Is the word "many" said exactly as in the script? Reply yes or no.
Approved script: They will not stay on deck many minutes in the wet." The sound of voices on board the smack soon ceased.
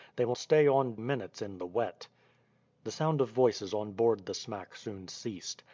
no